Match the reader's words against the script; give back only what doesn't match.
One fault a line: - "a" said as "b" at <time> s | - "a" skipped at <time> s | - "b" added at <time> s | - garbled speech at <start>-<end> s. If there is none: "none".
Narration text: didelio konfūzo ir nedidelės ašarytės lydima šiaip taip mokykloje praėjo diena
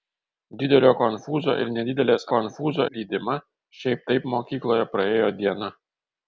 - "ašarytės" said as "konfūzo" at 2.3 s